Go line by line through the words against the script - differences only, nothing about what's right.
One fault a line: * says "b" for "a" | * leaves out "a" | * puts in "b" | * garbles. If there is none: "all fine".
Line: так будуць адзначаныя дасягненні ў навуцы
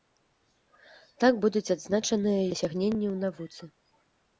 all fine